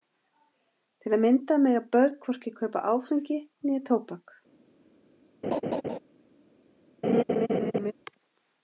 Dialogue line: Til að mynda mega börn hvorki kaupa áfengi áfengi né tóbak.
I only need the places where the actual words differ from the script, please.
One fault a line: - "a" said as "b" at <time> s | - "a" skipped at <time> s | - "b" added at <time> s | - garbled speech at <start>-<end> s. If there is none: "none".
- "áfengi" skipped at 3.4 s